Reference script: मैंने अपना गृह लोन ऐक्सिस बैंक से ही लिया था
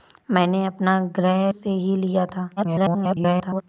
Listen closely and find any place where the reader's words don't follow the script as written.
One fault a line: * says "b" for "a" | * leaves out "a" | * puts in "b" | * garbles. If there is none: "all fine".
* leaves out "लोन ऐक्सिस बैंक"
* garbles